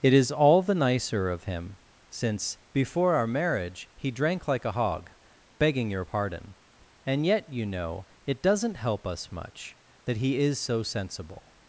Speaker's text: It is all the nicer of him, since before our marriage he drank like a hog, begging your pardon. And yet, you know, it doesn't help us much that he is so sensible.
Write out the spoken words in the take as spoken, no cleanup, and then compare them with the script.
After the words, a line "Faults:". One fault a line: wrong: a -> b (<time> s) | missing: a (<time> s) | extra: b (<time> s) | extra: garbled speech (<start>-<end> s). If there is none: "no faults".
It is all the nicer of him, since before our marriage he drank like a hog, begging your pardon. And yet, you know, it doesn't help us much that he is so sensible.
Faults:
no faults